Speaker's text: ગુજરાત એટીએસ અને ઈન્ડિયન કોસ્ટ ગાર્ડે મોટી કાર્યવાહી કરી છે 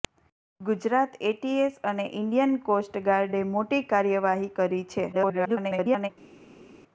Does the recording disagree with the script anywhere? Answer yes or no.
yes